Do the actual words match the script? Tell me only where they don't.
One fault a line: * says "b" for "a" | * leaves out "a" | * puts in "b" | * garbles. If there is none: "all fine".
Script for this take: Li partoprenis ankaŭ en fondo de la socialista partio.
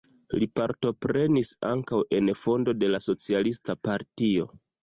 all fine